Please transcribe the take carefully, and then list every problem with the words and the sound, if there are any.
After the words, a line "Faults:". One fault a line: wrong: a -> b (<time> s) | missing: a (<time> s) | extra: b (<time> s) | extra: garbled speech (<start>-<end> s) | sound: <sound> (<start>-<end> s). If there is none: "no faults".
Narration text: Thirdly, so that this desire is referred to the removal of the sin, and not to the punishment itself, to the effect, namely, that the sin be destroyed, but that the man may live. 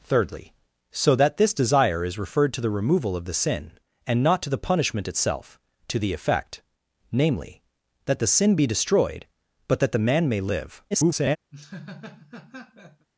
Thirdly, so that this desire is referred to the removal of the sin, and not to the punishment itself, to the effect, namely, that the sin be destroyed, but that the man may live. [garbled]
Faults:
extra: garbled speech (10.9-11.4 s)
sound: laugh (11.5-13.1 s)